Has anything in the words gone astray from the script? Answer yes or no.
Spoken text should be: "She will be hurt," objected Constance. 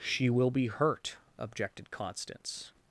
no